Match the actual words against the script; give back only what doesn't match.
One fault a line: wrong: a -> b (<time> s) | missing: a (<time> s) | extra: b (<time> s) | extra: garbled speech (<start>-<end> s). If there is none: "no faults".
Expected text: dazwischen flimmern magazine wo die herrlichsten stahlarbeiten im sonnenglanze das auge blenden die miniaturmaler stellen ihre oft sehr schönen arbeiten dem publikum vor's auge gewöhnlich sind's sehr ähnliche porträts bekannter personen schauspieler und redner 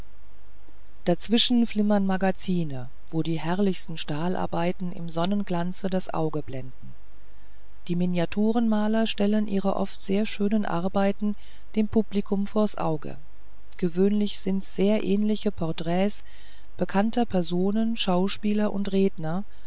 no faults